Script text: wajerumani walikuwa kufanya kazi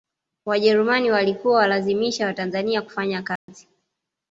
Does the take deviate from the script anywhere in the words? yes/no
yes